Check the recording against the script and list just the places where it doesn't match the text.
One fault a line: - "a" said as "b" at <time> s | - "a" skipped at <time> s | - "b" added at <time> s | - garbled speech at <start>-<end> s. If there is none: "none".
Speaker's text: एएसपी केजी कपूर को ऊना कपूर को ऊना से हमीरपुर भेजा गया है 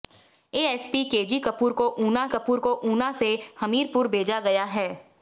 none